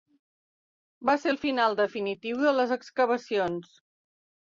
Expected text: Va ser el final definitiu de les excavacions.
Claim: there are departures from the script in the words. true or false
false